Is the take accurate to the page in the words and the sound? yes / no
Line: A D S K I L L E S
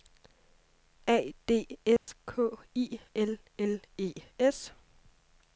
no